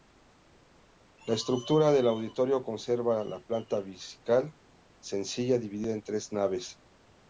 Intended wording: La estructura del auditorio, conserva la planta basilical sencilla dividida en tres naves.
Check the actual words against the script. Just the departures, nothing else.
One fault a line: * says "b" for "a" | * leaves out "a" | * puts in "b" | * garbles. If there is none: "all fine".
all fine